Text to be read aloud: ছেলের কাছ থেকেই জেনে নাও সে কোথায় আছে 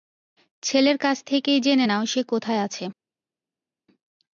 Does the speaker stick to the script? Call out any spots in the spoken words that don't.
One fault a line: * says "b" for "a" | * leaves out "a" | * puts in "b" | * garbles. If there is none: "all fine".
all fine